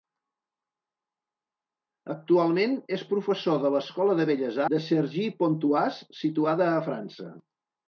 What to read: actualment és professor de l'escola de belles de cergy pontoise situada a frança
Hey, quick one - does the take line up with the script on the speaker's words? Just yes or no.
yes